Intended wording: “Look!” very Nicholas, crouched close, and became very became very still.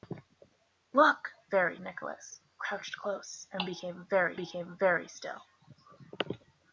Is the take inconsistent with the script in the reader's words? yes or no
no